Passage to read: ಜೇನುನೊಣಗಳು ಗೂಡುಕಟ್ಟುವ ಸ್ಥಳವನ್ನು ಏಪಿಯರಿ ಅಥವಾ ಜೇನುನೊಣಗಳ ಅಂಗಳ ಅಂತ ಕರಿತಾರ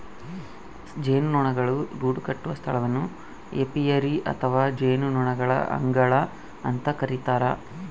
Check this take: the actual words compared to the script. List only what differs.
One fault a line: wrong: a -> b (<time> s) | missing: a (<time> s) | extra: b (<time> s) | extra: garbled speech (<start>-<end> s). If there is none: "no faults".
no faults